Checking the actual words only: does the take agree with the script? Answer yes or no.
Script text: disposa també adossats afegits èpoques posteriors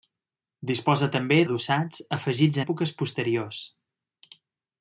yes